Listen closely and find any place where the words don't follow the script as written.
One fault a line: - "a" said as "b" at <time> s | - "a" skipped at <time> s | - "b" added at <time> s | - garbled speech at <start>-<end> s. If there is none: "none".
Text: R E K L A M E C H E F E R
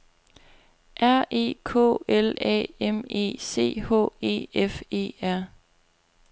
none